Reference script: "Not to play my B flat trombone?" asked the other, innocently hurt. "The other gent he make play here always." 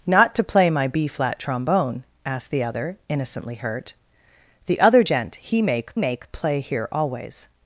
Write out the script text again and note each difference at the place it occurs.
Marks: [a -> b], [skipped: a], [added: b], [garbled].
"Not to play my B flat trombone?" asked the other, innocently hurt. "The other gent he make [added: make] play here always."